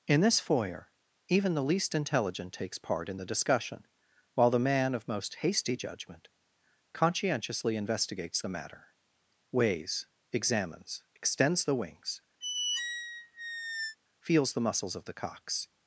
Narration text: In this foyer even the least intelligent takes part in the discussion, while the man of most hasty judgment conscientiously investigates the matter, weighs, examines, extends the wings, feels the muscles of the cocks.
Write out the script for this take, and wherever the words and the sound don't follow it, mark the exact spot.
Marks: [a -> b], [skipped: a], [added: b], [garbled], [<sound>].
In this foyer even the least intelligent takes part in the discussion, while the man of most hasty judgment conscientiously investigates the matter, weighs, examines, extends the wings, [squeak] feels the muscles of the cocks.